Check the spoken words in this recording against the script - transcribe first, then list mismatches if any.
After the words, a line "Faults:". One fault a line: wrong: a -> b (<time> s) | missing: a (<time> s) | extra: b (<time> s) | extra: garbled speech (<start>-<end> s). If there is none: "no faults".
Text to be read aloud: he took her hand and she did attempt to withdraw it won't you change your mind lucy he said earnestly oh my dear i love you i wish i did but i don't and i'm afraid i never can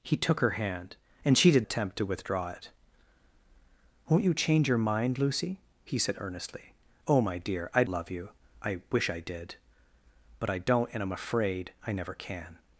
he took her hand and she did attempt to withdraw it won't you change your mind lucy he said earnestly oh my dear i love you i wish i did but i don't and i'm afraid i never can
Faults:
no faults